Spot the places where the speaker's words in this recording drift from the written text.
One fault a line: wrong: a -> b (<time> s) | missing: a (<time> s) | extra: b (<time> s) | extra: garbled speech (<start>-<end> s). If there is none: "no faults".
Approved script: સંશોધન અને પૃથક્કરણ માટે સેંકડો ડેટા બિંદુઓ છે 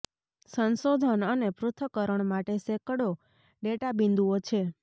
no faults